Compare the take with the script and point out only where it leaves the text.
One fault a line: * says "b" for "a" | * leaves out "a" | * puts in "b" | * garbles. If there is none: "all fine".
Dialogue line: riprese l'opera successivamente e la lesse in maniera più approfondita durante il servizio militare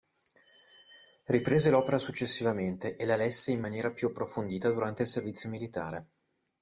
all fine